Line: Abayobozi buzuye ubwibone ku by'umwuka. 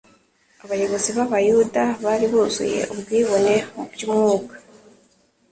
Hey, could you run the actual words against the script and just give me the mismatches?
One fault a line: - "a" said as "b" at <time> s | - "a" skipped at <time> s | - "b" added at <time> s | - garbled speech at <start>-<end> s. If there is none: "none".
- "b'abayuda bari" added at 1.2 s
- "ku" said as "mu" at 3.7 s